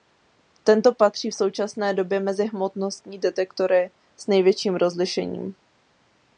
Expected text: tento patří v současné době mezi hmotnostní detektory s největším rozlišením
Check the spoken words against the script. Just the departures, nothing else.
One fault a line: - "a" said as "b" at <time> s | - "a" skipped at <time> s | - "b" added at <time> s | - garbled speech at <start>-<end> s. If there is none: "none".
none